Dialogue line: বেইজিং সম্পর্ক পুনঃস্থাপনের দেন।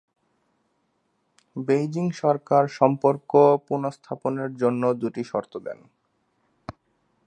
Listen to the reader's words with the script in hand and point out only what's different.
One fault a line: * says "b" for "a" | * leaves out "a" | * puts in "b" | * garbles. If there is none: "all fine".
* puts in "সরকার"
* puts in "জন্য দুটি শর্ত"